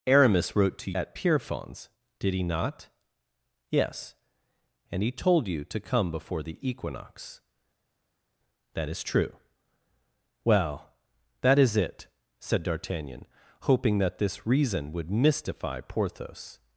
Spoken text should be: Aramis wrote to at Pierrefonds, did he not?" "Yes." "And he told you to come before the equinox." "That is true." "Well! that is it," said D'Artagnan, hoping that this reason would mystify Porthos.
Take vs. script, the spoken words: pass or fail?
pass